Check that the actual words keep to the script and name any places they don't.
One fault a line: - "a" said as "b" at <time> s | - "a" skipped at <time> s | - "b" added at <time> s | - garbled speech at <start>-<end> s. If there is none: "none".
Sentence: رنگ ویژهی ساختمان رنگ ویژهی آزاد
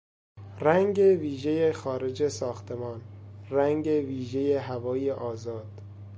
- "خارج" added at 1.7 s
- "هوای" added at 4.5 s